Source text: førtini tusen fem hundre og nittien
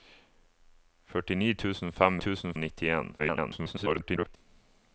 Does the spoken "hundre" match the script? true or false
false